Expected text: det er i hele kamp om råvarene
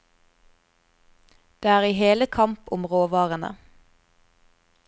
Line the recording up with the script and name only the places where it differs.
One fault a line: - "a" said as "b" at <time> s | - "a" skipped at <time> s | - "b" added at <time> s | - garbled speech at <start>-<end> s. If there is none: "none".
none